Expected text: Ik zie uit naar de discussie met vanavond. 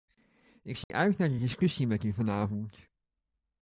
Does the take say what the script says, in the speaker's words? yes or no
no